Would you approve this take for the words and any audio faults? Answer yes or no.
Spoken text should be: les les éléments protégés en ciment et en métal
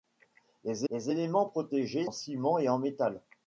yes